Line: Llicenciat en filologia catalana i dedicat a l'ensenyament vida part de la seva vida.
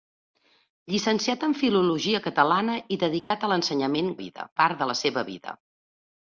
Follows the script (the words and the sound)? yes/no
no